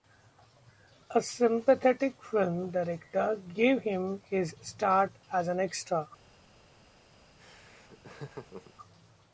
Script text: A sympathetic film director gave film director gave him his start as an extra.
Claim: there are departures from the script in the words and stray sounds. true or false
true